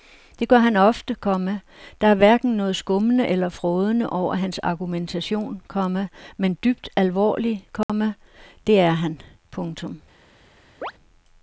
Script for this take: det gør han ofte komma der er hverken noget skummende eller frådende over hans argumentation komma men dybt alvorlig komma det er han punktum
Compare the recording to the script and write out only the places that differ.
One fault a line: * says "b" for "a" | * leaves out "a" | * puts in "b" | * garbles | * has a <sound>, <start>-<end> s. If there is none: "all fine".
* has a dropout, 7.8-7.9 s
* has a chirp, 10.8-10.9 s